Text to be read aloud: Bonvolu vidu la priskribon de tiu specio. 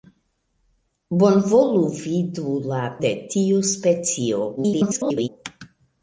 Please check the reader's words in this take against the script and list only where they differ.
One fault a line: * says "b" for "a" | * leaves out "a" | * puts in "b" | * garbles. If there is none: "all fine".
* leaves out "priskribon"
* garbles